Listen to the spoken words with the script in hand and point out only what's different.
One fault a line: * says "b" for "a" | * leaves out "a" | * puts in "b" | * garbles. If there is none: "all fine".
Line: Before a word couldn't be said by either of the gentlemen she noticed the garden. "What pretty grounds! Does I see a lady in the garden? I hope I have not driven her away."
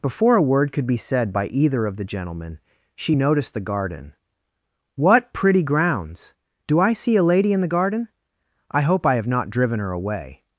* says "could" for "couldn't"
* says "Do" for "Does"